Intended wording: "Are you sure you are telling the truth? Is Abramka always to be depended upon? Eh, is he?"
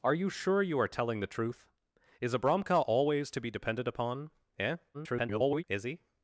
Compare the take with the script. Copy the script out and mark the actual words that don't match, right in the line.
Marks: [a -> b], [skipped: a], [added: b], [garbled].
"Are you sure you are telling the truth? Is Abramka always to be depended upon? Eh, [garbled] is he?"